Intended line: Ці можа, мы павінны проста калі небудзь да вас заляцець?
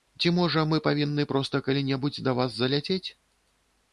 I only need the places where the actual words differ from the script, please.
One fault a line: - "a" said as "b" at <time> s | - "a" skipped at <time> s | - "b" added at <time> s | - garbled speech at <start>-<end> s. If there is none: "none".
none